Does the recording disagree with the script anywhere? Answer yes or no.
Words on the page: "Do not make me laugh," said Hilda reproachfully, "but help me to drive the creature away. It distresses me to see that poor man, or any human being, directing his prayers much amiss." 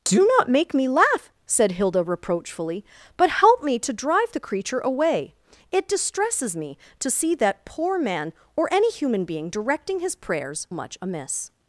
no